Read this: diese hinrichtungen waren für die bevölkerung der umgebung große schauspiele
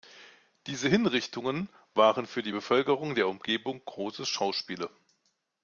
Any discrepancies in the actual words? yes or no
no